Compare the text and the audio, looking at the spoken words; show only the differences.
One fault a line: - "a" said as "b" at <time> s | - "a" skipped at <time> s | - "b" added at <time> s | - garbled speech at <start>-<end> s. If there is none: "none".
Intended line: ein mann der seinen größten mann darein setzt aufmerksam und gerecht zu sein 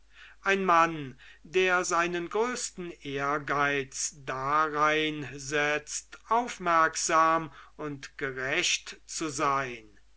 - "mann" said as "ehrgeiz" at 3.0 s